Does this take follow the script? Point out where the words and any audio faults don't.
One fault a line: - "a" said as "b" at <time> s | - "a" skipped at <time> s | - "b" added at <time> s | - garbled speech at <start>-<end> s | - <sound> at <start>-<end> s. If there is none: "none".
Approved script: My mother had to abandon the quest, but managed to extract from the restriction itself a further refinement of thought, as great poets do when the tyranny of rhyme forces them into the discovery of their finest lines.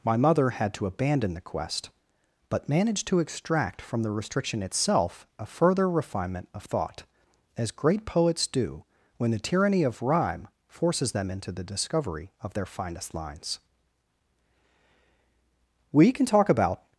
- "We can talk about" added at 15.9 s